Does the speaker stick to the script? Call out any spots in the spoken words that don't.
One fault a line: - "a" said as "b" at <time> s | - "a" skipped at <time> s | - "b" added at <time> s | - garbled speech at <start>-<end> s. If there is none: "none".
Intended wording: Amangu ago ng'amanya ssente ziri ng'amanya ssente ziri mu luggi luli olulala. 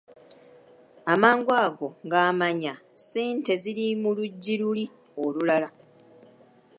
- "ng'amanya ssente ziri" skipped at 3.9 s